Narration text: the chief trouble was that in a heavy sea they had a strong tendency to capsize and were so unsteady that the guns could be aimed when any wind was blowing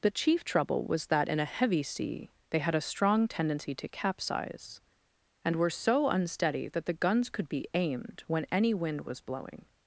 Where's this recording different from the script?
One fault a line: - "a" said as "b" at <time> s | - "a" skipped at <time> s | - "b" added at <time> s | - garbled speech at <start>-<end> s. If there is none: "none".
none